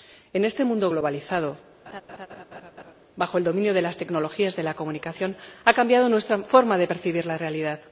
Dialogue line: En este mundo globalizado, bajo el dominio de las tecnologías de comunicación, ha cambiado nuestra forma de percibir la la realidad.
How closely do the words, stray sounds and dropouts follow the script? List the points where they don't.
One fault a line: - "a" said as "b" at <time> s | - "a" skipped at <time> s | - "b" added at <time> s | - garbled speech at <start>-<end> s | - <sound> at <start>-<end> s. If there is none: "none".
- laugh at 1.9-2.9 s
- "la" added at 4.6 s
- "la" skipped at 7.4 s